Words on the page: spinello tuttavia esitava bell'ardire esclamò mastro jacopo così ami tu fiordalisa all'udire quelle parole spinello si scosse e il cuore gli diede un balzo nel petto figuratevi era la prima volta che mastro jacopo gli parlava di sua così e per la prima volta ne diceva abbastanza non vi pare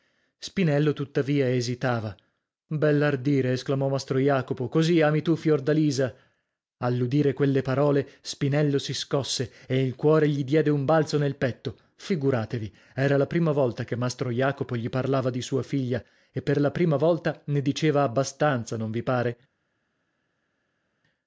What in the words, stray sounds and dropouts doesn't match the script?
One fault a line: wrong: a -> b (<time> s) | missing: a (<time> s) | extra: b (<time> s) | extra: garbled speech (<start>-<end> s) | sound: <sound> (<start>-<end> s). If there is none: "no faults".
wrong: così -> figlia (15.6 s)